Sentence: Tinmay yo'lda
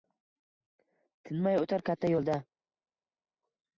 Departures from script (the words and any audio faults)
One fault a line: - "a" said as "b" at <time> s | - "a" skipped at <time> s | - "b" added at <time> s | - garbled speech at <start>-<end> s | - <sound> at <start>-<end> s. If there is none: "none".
- "o'tar katta" added at 1.7 s